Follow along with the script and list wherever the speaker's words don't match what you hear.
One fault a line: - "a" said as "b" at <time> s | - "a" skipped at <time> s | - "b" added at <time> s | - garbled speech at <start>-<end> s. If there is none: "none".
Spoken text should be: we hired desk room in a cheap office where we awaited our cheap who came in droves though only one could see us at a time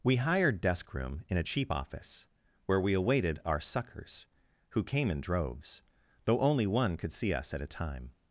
- "cheap" said as "suckers" at 3.6 s